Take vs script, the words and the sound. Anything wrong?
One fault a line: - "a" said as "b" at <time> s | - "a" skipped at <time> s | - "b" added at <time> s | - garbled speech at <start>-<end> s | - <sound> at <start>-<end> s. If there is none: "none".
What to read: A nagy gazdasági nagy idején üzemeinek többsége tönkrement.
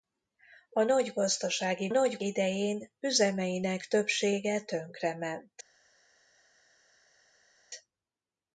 none